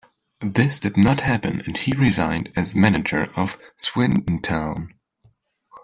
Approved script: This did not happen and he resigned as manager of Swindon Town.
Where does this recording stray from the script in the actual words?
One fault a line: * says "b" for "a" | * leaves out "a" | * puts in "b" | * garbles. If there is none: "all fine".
all fine